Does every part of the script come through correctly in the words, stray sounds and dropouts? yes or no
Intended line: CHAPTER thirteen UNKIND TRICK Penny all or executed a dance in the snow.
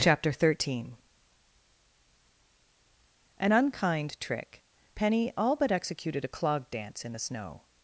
no